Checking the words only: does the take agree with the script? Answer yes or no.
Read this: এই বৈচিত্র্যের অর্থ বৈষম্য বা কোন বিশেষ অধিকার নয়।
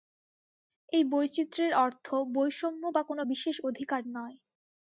yes